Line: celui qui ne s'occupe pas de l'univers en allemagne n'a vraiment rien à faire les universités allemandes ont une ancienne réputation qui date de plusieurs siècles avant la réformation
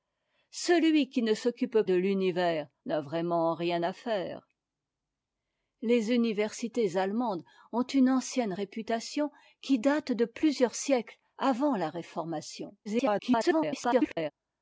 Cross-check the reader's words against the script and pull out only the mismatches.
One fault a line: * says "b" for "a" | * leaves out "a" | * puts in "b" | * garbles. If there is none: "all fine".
* leaves out "pas"
* leaves out "en allemagne"
* garbles